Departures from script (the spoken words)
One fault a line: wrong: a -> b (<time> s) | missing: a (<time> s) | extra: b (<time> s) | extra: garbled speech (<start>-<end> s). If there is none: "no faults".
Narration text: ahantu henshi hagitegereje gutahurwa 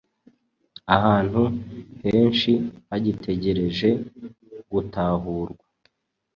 no faults